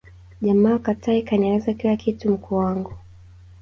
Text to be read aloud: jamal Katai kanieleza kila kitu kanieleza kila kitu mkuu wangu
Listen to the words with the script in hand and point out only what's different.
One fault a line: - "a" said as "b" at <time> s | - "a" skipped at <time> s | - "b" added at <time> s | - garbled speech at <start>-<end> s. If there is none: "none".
- "kanieleza kila kitu" skipped at 2.3 s